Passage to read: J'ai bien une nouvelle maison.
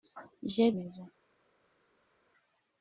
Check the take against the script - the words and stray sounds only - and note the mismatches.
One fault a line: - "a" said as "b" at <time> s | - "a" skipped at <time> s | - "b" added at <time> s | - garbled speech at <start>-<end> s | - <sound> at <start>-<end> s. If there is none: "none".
- "bien une nouvelle" skipped at 0.7 s